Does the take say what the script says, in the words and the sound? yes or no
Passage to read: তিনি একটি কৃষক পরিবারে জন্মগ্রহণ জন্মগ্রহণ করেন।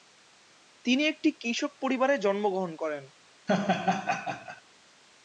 no